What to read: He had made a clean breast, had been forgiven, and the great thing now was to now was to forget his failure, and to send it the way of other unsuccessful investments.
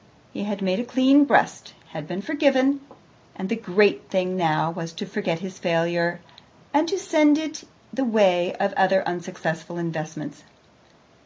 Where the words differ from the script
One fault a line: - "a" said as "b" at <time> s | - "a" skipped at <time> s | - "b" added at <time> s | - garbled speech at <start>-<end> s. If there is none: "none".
- "now was to" skipped at 5.0 s